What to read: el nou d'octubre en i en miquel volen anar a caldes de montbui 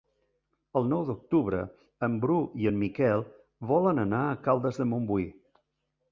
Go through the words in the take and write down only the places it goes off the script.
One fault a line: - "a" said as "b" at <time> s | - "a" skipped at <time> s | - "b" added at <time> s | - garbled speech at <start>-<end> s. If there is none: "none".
- "bru" added at 2.2 s